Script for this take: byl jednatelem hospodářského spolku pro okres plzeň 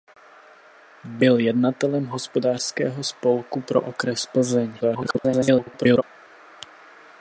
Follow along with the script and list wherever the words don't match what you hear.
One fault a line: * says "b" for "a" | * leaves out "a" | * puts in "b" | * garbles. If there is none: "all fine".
* garbles